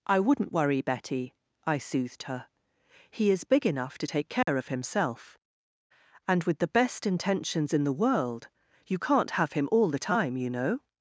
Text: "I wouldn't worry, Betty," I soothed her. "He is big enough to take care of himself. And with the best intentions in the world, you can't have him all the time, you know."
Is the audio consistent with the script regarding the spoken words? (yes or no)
yes